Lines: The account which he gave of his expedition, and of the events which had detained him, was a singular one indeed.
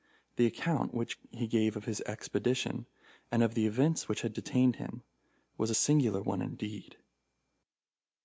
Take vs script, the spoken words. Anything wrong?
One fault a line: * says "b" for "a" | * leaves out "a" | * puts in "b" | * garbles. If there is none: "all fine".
all fine